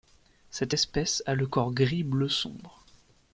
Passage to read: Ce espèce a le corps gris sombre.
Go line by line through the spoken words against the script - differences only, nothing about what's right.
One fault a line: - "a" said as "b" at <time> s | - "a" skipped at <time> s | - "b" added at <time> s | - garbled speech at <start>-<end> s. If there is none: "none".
- "Ce" said as "Cette" at 0.5 s
- "bleu" added at 2.0 s